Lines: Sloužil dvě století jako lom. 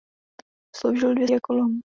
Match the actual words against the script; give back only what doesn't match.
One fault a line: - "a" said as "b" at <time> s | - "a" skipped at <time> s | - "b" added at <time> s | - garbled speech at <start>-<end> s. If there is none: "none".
- "století" skipped at 1.3 s